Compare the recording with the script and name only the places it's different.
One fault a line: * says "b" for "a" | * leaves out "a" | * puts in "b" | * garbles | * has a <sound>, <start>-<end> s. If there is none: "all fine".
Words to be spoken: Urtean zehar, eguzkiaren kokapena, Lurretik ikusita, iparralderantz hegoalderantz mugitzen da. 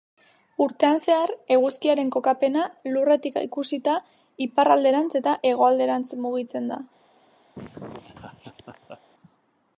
* puts in "eta"
* has a laugh, 7.5-9.0 s